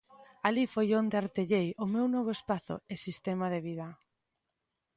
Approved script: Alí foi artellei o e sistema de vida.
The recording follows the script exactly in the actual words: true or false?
false